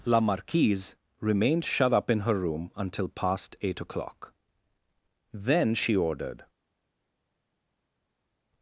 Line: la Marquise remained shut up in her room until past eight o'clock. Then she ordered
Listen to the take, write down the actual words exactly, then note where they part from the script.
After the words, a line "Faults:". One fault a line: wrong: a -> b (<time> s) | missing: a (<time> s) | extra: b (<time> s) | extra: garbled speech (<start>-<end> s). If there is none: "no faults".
la Marquise remained shut up in her room until past eight o'clock. Then she ordered
Faults:
no faults